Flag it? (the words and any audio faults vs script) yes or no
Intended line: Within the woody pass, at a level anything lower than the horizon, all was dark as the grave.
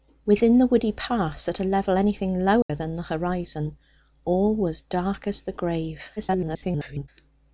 yes